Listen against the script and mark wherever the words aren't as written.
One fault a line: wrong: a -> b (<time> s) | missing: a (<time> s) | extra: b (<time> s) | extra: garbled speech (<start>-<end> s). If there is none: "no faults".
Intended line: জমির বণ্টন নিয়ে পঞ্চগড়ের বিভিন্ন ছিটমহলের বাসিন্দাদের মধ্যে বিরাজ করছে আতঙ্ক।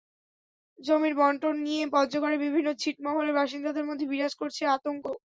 no faults